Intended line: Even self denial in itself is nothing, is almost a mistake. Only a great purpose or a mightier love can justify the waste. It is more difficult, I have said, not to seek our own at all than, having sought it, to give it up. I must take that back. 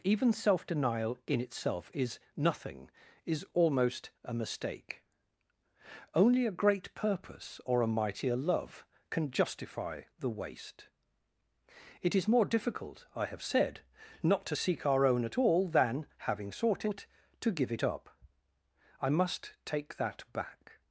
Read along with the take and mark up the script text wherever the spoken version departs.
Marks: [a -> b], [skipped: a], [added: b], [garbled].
Even self denial in itself is nothing, is almost a mistake. Only a great purpose or a mightier love can justify the waste. It is more difficult, I have said, not to seek our own at all than, having sought it, to give it up. I must take that back.